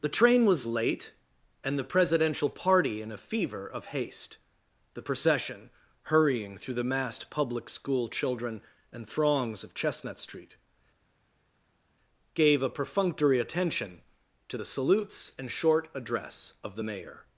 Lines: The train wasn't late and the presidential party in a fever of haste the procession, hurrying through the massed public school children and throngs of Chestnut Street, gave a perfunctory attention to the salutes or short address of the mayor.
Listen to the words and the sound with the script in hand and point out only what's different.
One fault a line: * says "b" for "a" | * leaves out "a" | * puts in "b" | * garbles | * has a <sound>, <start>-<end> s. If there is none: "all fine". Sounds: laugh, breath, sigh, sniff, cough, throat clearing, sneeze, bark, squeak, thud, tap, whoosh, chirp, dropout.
* says "was" for "wasn't"
* says "and" for "or"